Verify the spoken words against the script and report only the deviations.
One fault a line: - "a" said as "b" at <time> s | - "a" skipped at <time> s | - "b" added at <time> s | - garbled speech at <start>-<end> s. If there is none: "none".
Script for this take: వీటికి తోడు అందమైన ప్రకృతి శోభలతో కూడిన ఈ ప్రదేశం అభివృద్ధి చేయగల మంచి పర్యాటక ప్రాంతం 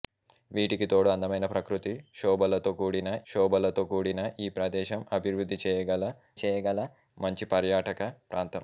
- "శోభలతో కూడిన" added at 3.3 s
- "చేయగల" added at 6.4 s